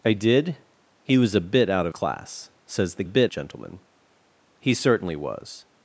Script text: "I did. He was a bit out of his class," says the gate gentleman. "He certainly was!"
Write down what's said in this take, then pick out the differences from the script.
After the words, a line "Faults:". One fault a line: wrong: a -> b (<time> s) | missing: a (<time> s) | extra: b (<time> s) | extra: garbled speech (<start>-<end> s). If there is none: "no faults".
"I did. He was a bit out of class," says the bit gentleman. "He certainly was!"
Faults:
missing: his (1.9 s)
wrong: gate -> bit (3.0 s)